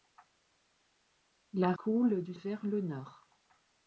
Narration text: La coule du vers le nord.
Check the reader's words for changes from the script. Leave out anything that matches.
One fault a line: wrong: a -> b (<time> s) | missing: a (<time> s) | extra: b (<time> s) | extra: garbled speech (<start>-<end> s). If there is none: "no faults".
no faults